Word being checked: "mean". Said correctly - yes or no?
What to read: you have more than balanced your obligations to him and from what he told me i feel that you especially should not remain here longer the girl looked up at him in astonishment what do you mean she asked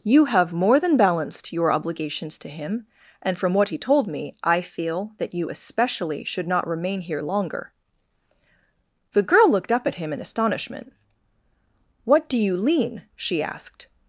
no